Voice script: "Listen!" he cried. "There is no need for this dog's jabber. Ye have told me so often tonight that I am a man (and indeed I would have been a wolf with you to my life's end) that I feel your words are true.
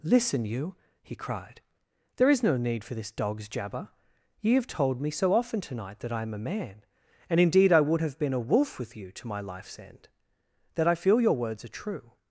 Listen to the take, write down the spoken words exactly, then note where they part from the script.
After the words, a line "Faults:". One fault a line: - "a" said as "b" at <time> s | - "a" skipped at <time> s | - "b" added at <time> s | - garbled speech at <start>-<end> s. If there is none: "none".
"Listen you!" he cried. "There is no need for this dog's jabber. Ye have told me so often tonight that I am a man (and indeed I would have been a wolf with you to my life's end) that I feel your words are true.
Faults:
- "you" added at 0.5 s